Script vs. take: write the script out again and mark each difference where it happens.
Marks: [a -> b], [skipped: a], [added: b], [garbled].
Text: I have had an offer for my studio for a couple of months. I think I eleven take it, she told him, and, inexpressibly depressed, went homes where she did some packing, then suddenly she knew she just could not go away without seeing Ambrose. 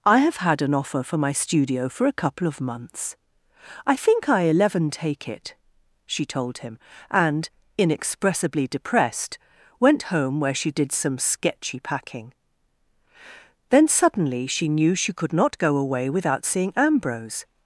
I have had an offer for my studio for a couple of months. I think I eleven take it, she told him, and, inexpressibly depressed, went [homes -> home] where she did some [added: sketchy] packing, then suddenly she knew she [skipped: just] could not go away without seeing Ambrose.